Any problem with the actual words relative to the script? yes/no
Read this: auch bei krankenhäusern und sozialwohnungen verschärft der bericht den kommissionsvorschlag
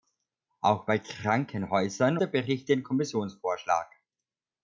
yes